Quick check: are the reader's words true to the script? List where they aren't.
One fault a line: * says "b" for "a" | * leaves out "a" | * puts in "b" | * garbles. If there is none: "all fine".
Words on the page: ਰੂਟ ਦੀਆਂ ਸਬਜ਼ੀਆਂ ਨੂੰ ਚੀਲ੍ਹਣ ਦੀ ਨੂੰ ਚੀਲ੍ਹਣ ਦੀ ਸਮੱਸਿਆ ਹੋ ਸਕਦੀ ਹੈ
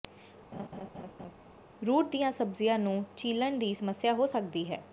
* leaves out "ਨੂੰ ਚੀਲ੍ਹਣ ਦੀ"